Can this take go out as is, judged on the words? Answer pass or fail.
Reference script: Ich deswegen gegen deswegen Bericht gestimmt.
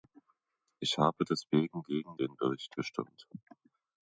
fail